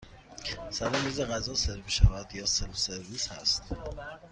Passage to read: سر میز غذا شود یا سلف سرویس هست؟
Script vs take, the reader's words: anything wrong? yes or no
yes